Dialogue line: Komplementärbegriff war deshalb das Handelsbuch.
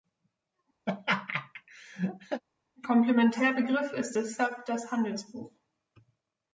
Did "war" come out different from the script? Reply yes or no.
yes